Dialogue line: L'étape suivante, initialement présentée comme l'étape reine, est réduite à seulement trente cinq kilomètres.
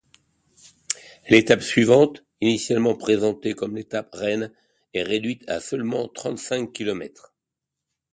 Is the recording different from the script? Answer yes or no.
no